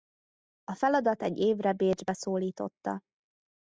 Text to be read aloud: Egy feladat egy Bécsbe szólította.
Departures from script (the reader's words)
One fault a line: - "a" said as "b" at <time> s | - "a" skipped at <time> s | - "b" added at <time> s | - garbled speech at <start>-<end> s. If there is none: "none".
- "Egy" said as "A" at 0.6 s
- "évre" added at 1.4 s